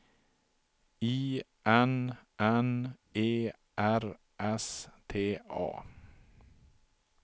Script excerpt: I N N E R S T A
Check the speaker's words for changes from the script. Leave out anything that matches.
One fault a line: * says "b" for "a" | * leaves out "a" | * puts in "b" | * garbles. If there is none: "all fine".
all fine